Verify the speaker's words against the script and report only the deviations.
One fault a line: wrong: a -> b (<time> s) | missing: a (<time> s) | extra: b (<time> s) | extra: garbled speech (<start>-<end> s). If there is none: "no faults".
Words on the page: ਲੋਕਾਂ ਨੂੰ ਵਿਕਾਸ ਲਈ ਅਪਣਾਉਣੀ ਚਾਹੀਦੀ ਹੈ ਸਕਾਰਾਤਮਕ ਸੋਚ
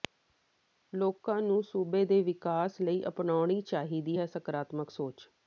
extra: ਸੂਬੇ ਦੇ (1.6 s)